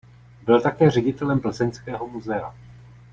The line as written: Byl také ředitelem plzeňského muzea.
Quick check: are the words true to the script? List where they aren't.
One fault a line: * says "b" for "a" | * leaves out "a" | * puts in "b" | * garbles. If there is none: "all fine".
all fine